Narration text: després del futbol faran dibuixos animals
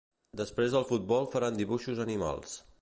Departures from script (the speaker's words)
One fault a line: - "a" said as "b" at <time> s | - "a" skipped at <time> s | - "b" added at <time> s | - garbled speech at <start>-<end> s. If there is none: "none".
none